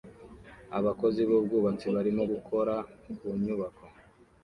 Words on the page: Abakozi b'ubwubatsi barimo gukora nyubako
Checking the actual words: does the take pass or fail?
fail